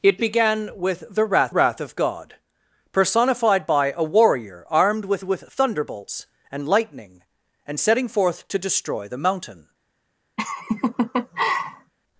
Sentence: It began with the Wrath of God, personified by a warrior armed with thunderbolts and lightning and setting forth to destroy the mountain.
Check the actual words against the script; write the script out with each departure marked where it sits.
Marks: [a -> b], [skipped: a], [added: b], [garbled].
It began with the Wrath [added: Wrath] of God, personified by a warrior armed with [added: with] thunderbolts and lightning and setting forth to destroy the mountain.